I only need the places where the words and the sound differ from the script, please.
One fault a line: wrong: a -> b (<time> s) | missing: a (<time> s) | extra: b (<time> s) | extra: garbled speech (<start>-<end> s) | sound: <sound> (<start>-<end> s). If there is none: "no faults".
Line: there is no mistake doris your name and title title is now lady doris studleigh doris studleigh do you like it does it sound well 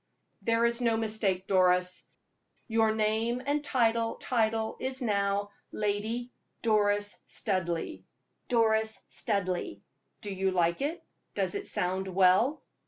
no faults